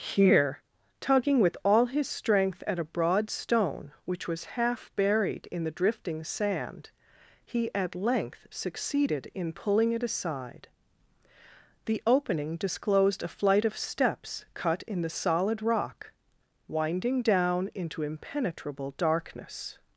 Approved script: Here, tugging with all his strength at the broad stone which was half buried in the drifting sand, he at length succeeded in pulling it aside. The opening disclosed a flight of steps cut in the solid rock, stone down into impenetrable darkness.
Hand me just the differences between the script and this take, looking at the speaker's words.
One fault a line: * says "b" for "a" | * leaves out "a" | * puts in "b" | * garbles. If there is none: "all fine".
* says "a" for "the"
* says "winding" for "stone"